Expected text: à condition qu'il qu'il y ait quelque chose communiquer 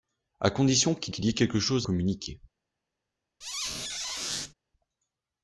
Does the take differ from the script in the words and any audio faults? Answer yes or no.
yes